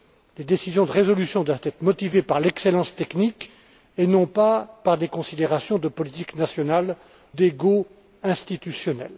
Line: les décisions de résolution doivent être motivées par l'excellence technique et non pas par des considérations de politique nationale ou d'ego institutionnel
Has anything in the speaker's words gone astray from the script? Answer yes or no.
yes